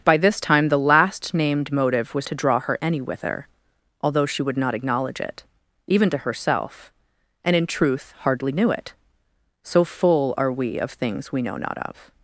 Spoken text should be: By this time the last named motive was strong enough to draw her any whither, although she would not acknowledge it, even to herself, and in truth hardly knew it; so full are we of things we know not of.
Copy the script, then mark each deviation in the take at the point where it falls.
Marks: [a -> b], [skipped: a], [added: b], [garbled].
By this time the last named motive was [skipped: strong enough] to draw her any whither, although she would not acknowledge it, even to herself, and in truth hardly knew it; so full are we of things we know not of.